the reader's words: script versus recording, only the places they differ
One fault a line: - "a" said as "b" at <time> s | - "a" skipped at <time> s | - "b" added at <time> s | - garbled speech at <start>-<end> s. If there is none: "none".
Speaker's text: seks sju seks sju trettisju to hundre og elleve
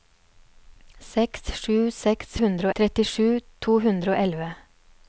- "sju" said as "hundre" at 2.4 s